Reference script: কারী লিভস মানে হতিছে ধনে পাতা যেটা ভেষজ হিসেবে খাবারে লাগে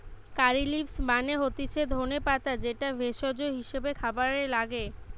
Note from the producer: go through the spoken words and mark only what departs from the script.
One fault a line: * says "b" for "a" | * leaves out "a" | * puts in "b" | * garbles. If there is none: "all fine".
all fine